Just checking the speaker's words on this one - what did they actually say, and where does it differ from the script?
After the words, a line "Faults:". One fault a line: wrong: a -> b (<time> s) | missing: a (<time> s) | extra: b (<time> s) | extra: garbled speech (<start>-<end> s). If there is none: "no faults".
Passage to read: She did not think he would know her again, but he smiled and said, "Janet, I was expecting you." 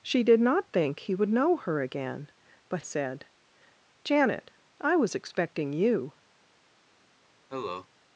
She did not think he would know her again, but said, "Janet, I was expecting you."
Faults:
missing: he smiled and (2.8 s)